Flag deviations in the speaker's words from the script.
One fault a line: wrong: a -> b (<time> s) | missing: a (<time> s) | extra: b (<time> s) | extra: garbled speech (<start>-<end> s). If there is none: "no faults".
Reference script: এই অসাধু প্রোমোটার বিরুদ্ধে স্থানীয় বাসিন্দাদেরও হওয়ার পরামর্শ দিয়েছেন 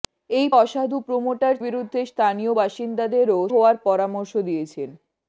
no faults